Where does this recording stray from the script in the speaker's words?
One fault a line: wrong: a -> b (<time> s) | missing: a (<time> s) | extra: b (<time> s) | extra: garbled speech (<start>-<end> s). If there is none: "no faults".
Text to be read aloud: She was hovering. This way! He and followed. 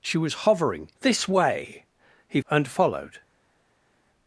no faults